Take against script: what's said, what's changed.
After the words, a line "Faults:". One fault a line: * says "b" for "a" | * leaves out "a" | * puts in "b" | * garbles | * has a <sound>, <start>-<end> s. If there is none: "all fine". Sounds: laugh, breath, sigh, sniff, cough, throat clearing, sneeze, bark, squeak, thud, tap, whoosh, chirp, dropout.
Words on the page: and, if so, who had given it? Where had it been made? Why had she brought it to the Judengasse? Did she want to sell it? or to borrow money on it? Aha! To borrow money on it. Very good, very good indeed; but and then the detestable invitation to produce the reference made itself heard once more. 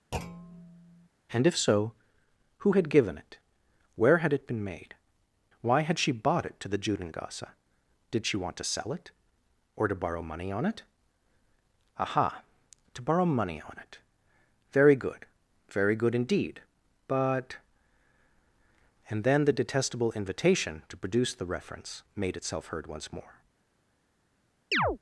and, if so, who had given it? Where had it been made? Why had she bought it to the Judengasse? Did she want to sell it? or to borrow money on it? Aha! To borrow money on it. Very good, very good indeed; but and then the detestable invitation to produce the reference made itself heard once more.
Faults:
* has a thud, 0.1-1.1 s
* says "bought" for "brought"
* has a chirp, 24.7-25.0 s